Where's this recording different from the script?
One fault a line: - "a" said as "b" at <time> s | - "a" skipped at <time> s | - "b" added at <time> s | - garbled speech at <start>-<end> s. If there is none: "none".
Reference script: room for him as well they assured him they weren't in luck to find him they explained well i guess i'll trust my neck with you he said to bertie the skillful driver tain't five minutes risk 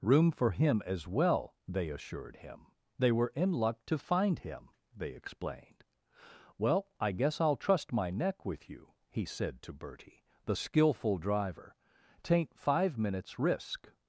- "weren't" said as "were" at 3.1 s